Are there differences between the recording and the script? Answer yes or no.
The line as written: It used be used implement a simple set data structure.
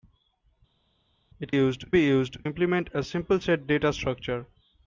no